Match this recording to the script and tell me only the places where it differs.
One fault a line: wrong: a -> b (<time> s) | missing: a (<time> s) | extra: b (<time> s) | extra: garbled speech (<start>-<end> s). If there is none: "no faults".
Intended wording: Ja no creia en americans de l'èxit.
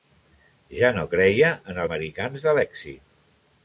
no faults